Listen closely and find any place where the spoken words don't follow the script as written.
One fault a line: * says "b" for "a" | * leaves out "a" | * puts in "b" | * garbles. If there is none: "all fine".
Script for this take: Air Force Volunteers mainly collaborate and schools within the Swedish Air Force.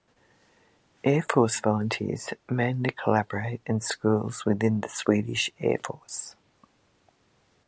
all fine